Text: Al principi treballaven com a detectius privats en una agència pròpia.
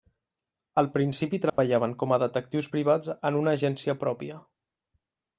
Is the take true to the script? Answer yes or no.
yes